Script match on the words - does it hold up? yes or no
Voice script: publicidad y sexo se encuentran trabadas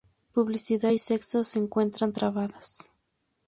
yes